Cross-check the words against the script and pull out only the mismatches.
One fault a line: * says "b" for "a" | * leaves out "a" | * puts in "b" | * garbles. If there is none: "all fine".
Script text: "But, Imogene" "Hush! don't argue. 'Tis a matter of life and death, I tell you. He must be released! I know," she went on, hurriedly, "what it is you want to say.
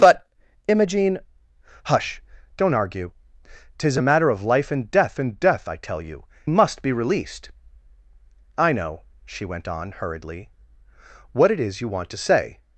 * puts in "and death"
* leaves out "He"